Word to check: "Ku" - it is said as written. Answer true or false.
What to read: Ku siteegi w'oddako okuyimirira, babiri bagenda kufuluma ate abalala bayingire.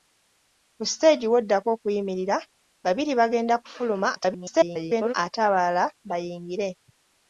true